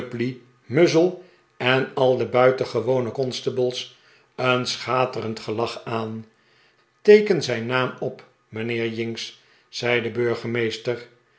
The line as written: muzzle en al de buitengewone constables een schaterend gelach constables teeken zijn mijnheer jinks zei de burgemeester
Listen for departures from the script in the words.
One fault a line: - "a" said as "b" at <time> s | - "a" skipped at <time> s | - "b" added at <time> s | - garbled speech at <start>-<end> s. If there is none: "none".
- "constables" said as "aan" at 5.8 s
- "naam op" added at 7.6 s